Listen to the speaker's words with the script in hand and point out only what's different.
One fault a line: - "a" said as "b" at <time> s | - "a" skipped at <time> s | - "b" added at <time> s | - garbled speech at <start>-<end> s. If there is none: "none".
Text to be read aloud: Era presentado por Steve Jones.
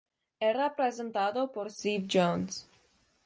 none